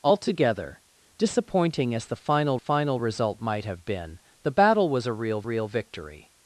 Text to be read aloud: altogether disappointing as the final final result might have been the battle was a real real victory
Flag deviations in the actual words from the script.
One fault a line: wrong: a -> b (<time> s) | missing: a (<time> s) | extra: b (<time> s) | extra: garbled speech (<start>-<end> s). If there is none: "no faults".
no faults